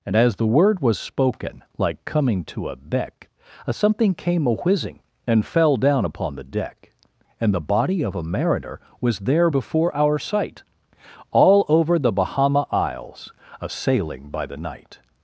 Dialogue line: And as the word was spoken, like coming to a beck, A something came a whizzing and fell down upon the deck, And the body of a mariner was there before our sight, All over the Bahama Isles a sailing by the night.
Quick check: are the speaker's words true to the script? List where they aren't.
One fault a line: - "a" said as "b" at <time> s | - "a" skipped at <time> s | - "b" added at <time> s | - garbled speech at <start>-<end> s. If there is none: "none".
none